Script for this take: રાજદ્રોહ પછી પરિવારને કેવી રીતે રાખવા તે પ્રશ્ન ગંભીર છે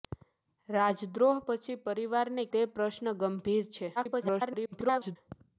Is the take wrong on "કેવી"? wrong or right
wrong